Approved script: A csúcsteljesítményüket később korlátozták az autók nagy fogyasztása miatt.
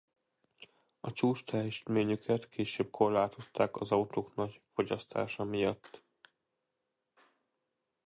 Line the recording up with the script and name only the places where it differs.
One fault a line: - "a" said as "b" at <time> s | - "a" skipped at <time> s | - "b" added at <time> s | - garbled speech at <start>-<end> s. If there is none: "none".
none